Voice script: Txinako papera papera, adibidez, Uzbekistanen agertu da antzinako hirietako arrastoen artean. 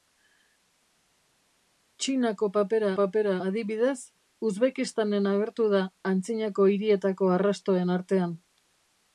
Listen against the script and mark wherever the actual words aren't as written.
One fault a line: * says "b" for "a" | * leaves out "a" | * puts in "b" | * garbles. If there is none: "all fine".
all fine